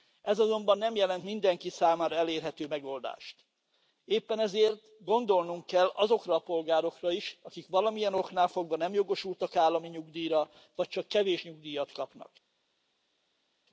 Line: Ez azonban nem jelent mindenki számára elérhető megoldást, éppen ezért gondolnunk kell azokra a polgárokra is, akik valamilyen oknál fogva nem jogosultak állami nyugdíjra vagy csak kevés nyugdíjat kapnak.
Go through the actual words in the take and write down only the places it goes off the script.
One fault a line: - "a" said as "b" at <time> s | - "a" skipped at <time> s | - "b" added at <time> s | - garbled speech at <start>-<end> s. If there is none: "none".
none